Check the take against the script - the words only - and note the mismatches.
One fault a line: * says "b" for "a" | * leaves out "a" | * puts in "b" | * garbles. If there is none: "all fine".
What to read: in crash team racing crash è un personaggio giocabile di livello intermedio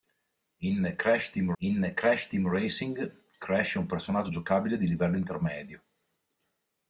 * puts in "in crash team"